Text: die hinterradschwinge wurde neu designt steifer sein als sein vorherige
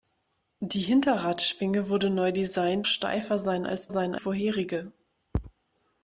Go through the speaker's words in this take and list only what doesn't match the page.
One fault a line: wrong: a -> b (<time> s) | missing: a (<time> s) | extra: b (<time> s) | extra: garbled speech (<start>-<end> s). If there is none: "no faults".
no faults